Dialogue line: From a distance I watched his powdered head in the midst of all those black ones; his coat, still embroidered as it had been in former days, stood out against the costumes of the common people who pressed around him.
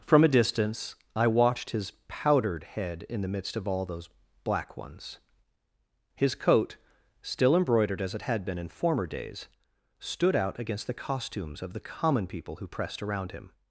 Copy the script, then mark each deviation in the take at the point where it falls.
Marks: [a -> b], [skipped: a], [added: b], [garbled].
From a distance I watched his powdered head in the midst of all those black ones; his coat, still embroidered as it had been in former days, stood out against the costumes of the common people who pressed around him.